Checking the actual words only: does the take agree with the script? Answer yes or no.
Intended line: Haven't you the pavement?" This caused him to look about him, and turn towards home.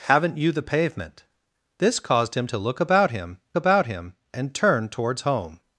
no